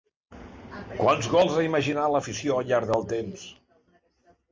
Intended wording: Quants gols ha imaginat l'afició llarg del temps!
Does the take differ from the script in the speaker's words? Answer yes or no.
yes